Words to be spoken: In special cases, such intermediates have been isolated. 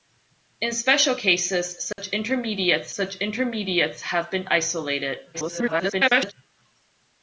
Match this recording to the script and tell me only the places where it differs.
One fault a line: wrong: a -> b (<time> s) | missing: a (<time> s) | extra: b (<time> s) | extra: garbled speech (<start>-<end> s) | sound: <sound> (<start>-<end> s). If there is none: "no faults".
sound: dropout (1.9-2.0 s)
extra: such intermediates (2.9 s)
extra: garbled speech (5.3-6.3 s)